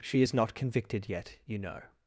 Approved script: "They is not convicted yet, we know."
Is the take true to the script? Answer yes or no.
no